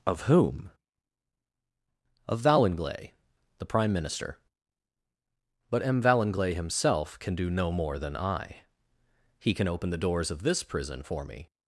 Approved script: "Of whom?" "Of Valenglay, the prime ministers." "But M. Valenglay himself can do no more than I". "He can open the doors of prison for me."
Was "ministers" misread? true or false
true